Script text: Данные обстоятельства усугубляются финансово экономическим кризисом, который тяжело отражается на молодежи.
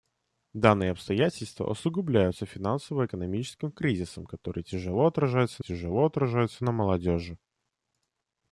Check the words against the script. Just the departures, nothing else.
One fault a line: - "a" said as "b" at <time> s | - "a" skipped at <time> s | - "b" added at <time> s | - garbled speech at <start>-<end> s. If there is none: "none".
- "тяжело отражается" added at 5.6 s